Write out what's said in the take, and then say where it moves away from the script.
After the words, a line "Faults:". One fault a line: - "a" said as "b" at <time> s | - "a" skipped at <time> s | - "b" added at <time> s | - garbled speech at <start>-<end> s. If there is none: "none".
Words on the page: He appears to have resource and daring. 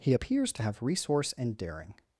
He appears to have resource and daring.
Faults:
none